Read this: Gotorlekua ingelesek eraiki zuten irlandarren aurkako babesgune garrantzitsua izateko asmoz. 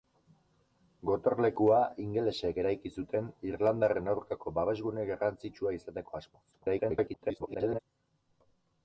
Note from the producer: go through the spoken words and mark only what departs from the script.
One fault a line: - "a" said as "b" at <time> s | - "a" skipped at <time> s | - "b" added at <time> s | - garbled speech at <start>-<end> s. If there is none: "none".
- garbled speech at 6.5-7.8 s